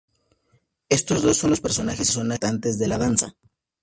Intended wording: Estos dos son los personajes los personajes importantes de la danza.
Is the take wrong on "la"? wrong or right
right